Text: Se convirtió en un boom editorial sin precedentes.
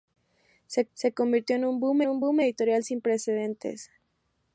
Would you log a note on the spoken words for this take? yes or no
yes